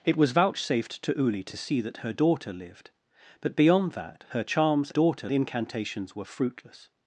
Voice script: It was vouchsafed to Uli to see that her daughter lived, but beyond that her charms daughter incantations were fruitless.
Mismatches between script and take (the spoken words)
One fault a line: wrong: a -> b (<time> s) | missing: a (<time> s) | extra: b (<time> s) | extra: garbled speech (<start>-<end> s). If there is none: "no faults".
no faults